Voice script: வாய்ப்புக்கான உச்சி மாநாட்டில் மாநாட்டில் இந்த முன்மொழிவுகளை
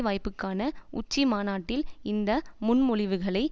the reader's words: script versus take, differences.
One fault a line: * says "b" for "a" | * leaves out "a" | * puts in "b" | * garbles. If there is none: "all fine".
* leaves out "மாநாட்டில்"